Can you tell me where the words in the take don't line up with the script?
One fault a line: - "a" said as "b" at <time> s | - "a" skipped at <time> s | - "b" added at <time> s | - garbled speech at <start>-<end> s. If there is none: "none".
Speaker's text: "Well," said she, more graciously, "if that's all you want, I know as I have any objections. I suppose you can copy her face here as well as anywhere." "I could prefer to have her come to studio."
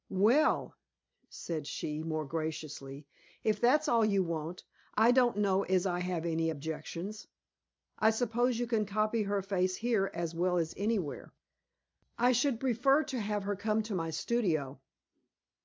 - "don't" added at 5.1 s
- "could" said as "should" at 12.3 s
- "my" added at 13.9 s